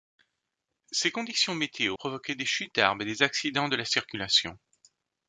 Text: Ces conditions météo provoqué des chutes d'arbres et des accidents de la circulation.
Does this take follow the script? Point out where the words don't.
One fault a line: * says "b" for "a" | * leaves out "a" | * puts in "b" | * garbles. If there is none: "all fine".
all fine